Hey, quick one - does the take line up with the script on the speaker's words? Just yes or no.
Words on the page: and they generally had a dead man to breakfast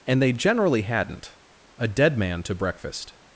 no